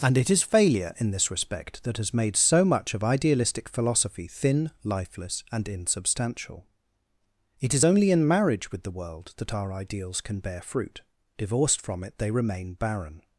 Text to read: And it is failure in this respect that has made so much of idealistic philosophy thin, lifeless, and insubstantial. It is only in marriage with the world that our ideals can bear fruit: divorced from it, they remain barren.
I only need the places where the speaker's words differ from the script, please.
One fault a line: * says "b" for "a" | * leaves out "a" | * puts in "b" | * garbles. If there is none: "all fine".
all fine